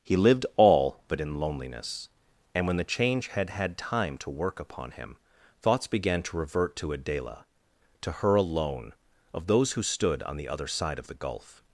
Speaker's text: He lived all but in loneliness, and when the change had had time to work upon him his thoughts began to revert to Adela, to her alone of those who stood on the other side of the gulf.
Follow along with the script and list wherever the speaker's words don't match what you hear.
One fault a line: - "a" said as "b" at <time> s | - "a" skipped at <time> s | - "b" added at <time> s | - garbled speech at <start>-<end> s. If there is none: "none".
- "his" skipped at 5.2 s